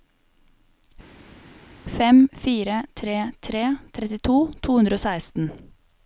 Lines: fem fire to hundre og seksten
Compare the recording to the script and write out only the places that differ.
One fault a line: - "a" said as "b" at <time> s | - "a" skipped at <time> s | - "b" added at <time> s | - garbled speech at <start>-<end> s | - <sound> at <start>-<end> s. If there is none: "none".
- "tre tre trettito" added at 3.0 s